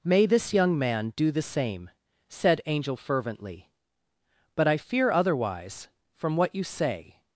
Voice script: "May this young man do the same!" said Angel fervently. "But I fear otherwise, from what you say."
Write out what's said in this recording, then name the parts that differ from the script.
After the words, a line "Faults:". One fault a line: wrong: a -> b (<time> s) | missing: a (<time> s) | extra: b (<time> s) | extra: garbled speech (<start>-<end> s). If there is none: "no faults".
"May this young man do the same!" said Angel fervently. "But I fear otherwise, from what you say."
Faults:
no faults